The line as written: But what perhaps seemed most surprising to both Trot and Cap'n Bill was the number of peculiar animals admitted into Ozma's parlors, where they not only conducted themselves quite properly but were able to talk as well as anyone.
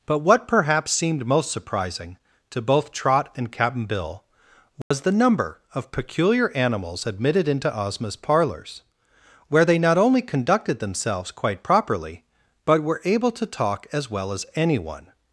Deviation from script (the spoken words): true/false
false